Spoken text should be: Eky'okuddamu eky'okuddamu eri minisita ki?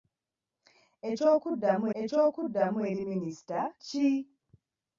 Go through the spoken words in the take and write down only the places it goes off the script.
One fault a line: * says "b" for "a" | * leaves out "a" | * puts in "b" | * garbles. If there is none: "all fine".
all fine